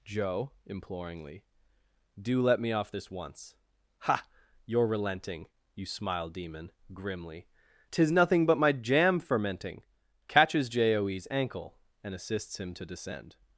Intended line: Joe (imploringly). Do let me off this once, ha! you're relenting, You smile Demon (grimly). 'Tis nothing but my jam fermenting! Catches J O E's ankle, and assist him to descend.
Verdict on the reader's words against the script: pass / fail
fail